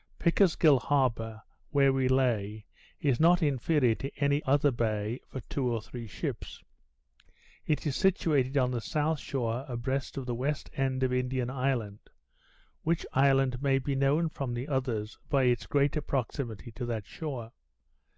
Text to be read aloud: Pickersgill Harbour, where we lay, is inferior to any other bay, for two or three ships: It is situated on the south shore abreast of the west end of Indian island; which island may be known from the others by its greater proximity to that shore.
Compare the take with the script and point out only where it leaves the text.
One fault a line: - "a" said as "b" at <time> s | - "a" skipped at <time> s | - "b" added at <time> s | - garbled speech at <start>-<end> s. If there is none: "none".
- "not" added at 3.2 s